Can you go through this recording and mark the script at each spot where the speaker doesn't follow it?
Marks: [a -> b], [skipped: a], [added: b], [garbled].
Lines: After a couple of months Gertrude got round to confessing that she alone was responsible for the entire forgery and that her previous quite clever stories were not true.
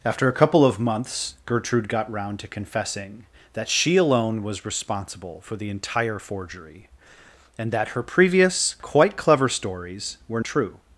After a couple of months Gertrude got round to confessing that she alone was responsible for the entire forgery and that her previous quite clever stories were [skipped: not] true.